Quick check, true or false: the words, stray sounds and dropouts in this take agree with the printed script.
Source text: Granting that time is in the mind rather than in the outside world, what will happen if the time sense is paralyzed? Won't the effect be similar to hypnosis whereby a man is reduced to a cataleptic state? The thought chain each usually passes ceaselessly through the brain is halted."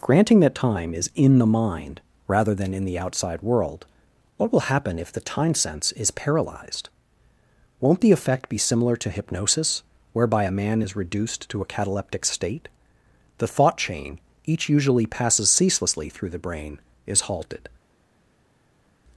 true